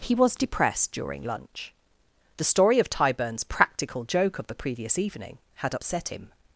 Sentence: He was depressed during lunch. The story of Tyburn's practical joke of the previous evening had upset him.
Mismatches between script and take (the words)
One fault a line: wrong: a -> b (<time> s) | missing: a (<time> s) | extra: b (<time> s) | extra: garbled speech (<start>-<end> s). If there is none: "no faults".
no faults